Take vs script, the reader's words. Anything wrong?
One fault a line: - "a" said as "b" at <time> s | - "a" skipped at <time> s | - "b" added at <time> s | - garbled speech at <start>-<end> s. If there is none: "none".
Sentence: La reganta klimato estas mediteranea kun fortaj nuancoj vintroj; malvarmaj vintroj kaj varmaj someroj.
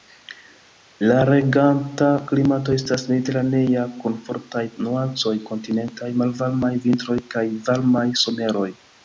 - "vintroj" said as "kontinentaj" at 5.5 s